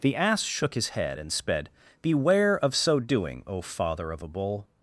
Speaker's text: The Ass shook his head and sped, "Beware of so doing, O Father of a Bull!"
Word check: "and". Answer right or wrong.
right